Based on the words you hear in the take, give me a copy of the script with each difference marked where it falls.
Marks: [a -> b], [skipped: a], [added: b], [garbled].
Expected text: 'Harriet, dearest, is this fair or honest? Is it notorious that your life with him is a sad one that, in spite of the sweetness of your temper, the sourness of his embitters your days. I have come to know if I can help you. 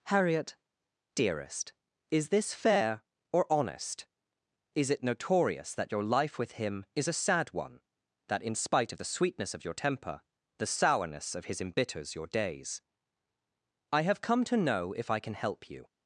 'Harriet, dearest, is this fair or honest? Is it notorious that your life with him is a sad one that, in spite of the sweetness of your temper, the sourness of his embitters your days. I have come to know if I can help you.